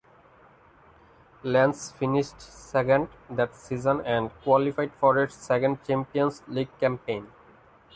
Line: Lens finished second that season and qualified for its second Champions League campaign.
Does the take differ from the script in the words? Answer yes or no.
no